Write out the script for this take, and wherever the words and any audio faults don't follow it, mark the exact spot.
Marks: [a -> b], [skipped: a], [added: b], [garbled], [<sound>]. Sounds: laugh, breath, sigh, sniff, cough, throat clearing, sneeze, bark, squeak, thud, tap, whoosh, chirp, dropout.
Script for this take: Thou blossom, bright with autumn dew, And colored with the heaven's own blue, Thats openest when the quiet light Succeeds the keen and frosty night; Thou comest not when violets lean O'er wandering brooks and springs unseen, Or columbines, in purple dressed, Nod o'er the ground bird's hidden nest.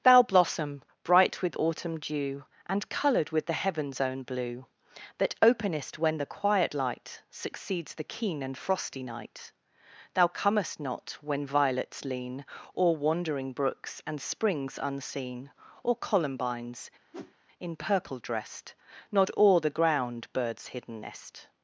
Thou blossom, bright with autumn dew, And colored with the heaven's own blue, [Thats -> That] openest when the quiet light Succeeds the keen and frosty night; Thou comest not when violets lean O'er wandering brooks and springs unseen, Or columbines, [whoosh] in purple dressed, Nod o'er the ground bird's hidden nest.